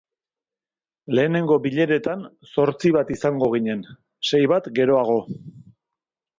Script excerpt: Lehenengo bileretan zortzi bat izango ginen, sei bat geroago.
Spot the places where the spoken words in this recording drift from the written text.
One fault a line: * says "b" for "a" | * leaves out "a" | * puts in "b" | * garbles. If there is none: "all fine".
all fine